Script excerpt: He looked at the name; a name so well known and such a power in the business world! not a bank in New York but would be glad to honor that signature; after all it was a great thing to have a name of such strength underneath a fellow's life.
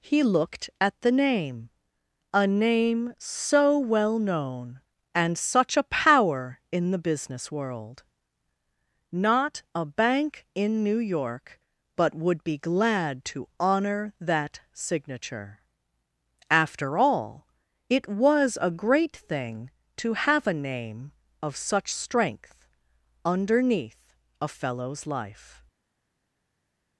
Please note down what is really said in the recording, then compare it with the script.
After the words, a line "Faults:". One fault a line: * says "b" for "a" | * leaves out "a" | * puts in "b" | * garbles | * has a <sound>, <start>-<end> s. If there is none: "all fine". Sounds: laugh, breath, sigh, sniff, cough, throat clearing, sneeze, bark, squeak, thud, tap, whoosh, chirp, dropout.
He looked at the name; a name so well known and such a power in the business world! not a bank in New York but would be glad to honor that signature; after all it was a great thing to have a name of such strength underneath a fellow's life.
Faults:
all fine